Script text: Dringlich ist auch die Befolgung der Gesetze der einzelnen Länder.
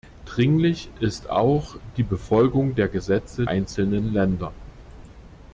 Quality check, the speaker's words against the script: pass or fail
fail